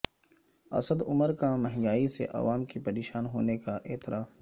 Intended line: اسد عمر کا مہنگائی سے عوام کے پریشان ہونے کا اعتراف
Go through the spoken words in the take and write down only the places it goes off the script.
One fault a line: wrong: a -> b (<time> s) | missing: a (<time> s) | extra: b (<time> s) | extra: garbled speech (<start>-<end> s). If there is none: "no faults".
no faults